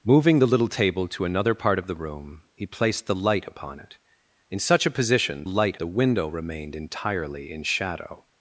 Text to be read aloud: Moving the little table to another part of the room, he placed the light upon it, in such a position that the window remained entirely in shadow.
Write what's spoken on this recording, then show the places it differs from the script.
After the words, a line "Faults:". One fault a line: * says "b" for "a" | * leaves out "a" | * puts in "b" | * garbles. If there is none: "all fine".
Moving the little table to another part of the room, he placed the light upon it, in such a position light the window remained entirely in shadow.
Faults:
* says "light" for "that"